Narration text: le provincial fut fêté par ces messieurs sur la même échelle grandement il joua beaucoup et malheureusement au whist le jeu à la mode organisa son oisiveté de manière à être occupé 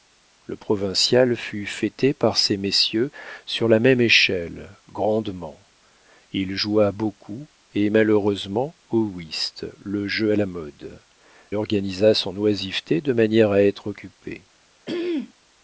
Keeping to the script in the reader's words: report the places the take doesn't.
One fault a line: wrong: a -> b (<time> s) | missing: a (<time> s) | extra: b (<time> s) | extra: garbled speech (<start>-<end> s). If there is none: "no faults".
no faults